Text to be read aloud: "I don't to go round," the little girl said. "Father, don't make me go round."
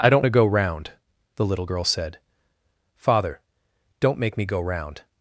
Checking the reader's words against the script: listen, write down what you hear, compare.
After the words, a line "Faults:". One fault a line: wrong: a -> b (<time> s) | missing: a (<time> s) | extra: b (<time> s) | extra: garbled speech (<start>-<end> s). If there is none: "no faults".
"I don't to go round," the little girl said. "Father, don't make me go round."
Faults:
no faults